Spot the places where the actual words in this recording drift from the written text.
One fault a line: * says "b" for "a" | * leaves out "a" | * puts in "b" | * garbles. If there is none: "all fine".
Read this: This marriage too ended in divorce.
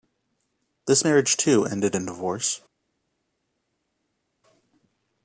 all fine